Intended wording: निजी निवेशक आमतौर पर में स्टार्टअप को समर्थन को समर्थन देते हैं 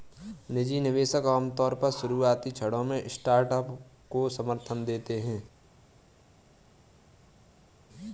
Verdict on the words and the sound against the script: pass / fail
fail